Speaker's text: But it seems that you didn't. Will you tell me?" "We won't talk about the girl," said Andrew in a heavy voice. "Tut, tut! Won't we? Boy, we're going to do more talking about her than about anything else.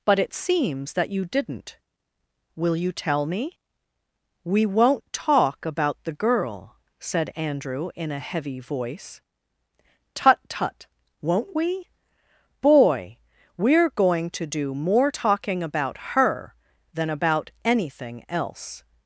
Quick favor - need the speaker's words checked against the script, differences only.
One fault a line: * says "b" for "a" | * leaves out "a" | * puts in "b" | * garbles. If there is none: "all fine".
all fine